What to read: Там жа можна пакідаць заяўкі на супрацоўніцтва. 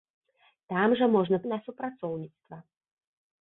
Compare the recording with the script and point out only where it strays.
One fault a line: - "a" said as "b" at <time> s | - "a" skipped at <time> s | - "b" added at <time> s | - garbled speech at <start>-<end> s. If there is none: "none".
- "пакідаць заяўкі" skipped at 1.4 s